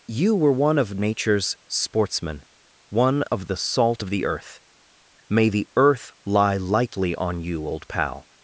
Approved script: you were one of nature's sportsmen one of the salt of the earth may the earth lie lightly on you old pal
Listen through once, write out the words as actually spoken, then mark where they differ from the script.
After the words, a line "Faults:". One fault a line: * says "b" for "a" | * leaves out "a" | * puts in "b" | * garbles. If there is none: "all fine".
you were one of nature's sportsmen one of the salt of the earth may the earth lie lightly on you old pal
Faults:
all fine